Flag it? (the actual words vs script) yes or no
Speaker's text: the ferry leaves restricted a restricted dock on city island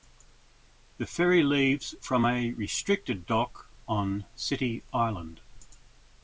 yes